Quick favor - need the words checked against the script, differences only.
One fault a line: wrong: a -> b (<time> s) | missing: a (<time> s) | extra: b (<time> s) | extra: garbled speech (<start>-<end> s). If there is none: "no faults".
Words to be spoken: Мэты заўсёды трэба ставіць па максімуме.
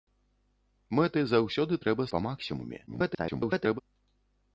missing: ставіць (2.0 s)
extra: garbled speech (2.9-3.8 s)